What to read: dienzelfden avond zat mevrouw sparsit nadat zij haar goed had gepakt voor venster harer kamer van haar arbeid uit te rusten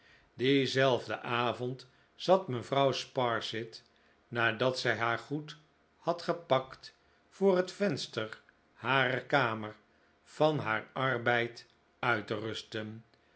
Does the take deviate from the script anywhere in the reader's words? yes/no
yes